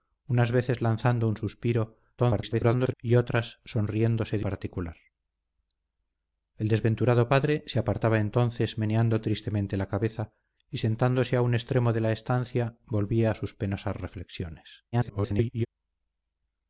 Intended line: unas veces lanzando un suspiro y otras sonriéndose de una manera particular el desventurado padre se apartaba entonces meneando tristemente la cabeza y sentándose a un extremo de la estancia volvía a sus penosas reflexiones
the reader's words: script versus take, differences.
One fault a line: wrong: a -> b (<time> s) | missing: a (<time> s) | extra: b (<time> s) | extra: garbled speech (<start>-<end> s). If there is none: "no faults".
extra: garbled speech (2.2-2.9 s)
missing: una manera (4.5 s)
extra: garbled speech (14.9-15.7 s)